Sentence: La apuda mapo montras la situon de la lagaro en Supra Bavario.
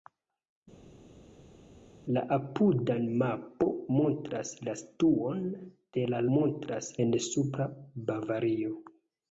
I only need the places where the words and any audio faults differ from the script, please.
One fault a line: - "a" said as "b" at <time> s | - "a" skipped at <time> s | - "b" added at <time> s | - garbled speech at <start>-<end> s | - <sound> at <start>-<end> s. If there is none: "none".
- "lagaro" said as "montras" at 6.4 s